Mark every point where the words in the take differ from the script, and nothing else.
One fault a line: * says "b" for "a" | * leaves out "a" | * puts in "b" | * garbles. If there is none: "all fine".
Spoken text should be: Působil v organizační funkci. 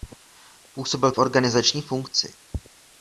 all fine